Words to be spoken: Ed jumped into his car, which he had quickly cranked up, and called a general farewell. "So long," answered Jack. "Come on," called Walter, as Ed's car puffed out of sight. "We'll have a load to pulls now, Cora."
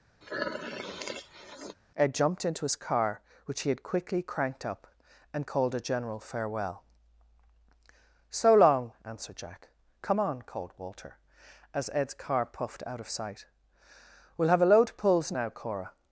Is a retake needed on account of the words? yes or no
no